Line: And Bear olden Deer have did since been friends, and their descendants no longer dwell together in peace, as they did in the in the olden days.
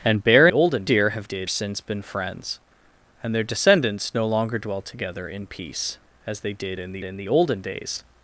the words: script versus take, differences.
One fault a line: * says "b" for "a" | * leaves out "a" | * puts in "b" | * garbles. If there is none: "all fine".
all fine